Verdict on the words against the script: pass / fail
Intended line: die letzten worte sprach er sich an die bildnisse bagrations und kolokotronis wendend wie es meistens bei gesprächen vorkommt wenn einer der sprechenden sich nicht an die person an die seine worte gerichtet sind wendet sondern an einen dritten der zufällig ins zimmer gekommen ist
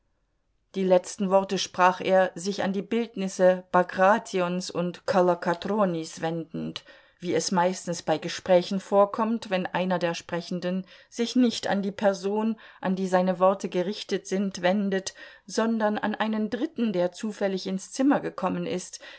pass